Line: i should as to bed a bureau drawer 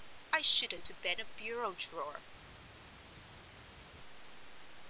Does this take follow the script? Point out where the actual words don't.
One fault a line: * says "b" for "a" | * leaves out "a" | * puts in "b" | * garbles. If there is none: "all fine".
all fine